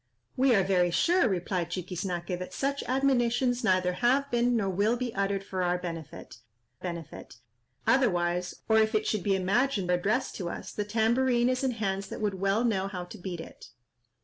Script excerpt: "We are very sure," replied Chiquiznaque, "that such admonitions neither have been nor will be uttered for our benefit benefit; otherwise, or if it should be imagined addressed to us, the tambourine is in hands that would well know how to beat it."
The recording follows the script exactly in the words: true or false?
true